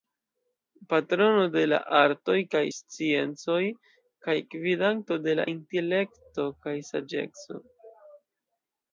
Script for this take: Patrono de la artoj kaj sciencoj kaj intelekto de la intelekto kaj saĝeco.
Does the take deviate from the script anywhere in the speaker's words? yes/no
yes